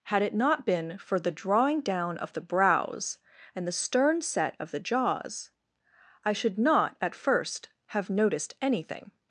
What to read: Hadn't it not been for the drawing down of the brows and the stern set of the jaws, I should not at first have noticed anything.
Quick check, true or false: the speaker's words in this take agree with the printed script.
false